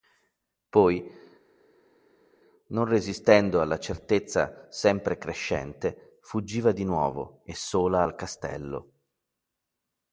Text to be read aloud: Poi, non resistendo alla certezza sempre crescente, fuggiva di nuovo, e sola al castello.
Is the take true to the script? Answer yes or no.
yes